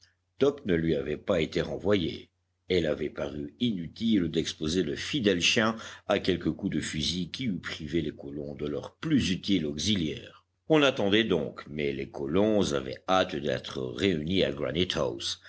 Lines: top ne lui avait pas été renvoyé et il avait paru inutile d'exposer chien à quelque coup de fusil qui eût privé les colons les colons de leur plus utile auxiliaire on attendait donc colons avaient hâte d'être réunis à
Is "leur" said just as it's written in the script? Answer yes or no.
yes